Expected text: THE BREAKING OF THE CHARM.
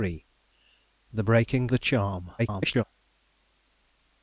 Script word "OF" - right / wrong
wrong